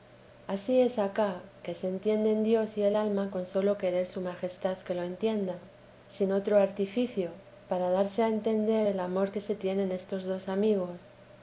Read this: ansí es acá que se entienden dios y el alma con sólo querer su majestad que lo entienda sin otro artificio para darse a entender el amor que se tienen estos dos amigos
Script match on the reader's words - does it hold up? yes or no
yes